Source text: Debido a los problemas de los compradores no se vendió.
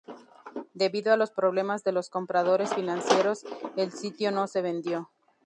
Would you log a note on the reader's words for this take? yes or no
yes